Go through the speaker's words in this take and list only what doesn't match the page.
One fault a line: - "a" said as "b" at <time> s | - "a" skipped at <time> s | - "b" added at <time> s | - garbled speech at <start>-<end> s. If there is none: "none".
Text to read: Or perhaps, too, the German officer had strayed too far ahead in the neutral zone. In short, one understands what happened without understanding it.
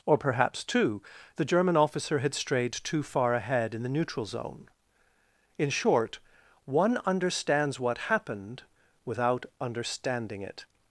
none